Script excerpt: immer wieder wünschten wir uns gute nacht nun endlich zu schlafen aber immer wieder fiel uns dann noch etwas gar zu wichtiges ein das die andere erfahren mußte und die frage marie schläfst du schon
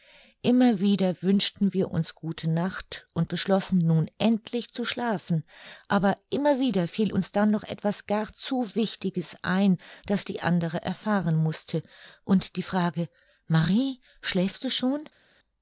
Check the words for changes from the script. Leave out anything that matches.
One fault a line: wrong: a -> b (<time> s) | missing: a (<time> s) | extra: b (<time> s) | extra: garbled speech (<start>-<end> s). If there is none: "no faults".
extra: und beschlossen (3.1 s)